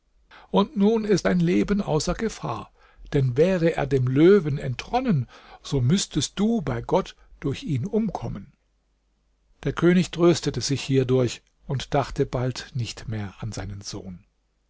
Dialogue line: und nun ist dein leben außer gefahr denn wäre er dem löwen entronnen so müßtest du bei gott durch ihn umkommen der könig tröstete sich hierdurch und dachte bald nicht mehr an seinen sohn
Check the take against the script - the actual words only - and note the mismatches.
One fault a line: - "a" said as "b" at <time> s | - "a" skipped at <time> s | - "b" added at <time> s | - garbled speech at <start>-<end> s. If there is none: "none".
none